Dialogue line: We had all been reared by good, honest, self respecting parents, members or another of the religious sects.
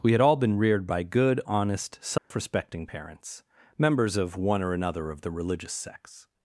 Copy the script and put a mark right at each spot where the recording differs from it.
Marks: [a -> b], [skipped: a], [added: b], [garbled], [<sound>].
We had all been reared by good, honest, self [dropout] respecting parents, members [added: of one] or another of the religious sects.